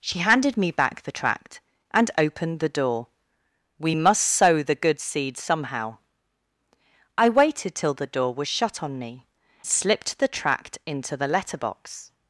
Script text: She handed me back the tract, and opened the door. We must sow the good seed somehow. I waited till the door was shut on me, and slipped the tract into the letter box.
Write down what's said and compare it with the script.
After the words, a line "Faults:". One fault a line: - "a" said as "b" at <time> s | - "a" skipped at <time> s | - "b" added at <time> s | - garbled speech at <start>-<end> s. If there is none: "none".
She handed me back the tract, and opened the door. We must sow the good seed somehow. I waited till the door was shut on me, slipped the tract into the letter box.
Faults:
- "and" skipped at 9.3 s